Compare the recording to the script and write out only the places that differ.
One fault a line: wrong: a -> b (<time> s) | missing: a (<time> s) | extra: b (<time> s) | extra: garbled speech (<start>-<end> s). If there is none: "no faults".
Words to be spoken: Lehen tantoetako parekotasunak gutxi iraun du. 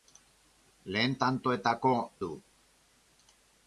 missing: parekotasunak gutxi iraun (1.9 s)